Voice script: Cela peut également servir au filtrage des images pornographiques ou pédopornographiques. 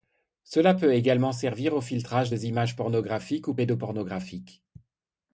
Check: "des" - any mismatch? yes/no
no